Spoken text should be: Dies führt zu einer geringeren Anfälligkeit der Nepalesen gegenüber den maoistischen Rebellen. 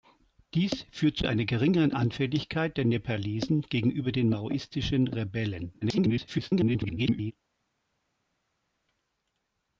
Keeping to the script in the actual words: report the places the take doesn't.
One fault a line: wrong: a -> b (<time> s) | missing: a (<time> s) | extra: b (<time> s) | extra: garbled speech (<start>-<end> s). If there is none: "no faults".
extra: garbled speech (5.8-7.3 s)